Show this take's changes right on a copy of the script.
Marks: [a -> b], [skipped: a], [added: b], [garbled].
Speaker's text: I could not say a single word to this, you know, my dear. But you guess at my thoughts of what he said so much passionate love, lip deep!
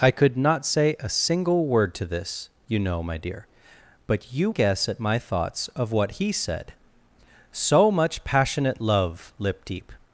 I could not say a single word to this, you know, my dear. But you guess at my thoughts of what he said so much passionate love, lip deep!